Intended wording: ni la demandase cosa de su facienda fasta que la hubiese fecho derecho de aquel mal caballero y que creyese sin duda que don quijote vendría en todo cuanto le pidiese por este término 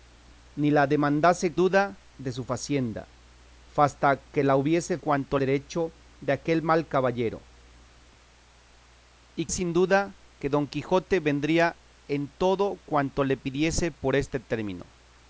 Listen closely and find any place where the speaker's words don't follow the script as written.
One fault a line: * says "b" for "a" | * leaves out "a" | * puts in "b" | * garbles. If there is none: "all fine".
* says "duda" for "cosa"
* says "cuanto" for "fecho"
* leaves out "que creyese"